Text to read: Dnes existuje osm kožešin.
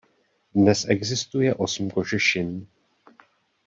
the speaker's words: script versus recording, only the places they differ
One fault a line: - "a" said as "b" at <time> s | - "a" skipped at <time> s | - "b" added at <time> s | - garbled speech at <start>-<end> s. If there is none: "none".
none